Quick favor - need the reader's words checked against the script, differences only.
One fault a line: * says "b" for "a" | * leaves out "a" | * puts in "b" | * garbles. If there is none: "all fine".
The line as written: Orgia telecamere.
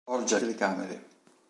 all fine